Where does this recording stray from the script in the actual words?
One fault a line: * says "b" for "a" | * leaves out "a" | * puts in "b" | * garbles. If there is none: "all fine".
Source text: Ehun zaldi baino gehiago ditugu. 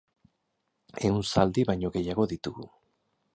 all fine